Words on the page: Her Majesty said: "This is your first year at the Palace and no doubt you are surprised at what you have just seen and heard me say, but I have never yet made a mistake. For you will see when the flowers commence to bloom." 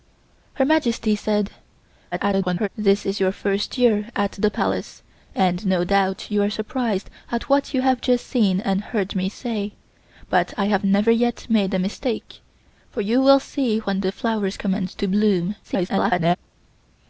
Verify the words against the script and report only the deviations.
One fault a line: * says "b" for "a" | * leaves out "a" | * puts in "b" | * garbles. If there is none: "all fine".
* garbles
* garbles